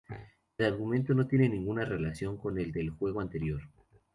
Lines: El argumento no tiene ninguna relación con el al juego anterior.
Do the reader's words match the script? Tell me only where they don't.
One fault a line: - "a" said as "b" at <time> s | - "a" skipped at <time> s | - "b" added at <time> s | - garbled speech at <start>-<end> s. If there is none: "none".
- "al" said as "del" at 2.7 s